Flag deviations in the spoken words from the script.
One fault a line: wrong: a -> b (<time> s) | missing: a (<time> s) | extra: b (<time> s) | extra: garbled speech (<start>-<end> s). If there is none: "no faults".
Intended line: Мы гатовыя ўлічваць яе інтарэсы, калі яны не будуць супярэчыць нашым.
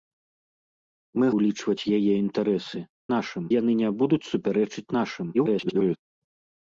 missing: гатовыя (1.2 s)
wrong: калі -> нашым (3.2 s)
extra: garbled speech (5.3-6.0 s)